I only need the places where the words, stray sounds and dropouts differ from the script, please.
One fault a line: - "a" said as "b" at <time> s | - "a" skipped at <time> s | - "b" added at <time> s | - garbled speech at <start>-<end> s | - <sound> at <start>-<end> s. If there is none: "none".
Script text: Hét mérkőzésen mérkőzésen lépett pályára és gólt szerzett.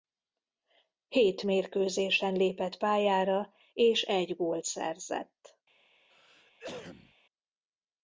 - "mérkőzésen" skipped at 2.3 s
- "egy" added at 4.0 s
- cough at 6.1-7.1 s